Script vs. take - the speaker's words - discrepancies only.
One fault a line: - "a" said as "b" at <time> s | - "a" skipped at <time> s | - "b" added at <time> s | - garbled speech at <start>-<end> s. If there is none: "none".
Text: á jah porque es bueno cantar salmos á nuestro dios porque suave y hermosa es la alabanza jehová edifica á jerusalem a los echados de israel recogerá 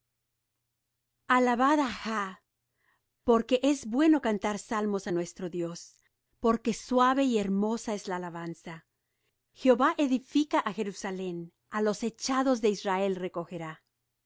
none